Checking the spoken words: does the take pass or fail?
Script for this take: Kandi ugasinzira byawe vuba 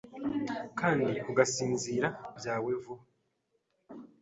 pass